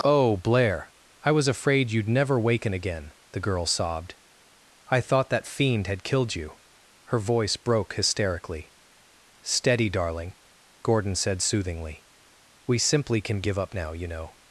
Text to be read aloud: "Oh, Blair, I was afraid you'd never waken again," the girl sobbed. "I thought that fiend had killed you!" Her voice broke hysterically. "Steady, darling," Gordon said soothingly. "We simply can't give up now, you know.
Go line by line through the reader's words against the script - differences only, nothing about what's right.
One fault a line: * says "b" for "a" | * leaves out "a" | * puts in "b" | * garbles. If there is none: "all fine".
* says "can" for "can't"